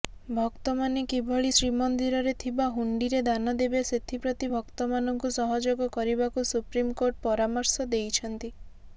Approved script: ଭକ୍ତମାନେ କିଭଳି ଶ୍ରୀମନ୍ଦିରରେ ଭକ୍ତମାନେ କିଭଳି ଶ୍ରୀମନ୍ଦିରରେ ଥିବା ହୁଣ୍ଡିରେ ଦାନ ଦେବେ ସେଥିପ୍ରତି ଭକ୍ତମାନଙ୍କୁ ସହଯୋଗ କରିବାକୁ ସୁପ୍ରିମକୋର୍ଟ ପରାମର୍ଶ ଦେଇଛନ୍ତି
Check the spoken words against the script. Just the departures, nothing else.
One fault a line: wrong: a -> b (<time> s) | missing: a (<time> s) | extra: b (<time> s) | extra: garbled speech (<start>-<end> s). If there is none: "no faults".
missing: ଭକ୍ତମାନେ କିଭଳି ଶ୍ରୀମନ୍ଦିରରେ (2.3 s)